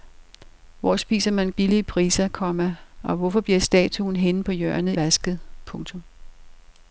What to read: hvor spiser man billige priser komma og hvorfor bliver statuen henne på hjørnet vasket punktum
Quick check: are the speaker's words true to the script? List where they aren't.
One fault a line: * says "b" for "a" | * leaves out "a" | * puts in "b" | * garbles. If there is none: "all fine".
all fine